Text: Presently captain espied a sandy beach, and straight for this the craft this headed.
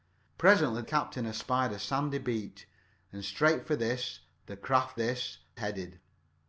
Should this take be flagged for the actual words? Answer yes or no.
no